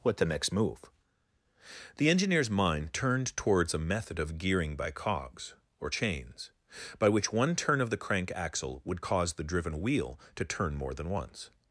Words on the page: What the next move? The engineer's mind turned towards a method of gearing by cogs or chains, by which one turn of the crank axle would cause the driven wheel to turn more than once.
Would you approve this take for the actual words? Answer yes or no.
yes